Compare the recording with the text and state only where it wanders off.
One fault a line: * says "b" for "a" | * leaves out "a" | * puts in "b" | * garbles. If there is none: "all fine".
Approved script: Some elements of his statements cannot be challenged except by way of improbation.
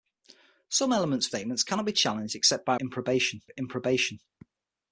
* leaves out "his"
* says "improbation" for "way"